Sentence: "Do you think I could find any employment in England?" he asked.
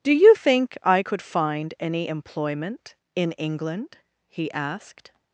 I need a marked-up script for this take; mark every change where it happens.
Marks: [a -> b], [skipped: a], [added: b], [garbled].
"Do you think I could find any employment in England?" he asked.